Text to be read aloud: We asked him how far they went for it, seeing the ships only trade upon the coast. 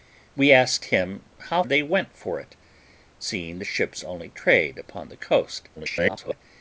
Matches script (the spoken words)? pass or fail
fail